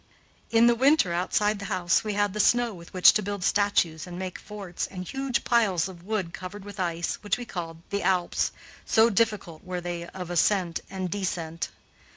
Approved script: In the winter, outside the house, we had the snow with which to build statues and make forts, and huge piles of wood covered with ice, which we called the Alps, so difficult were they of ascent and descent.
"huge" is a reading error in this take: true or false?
false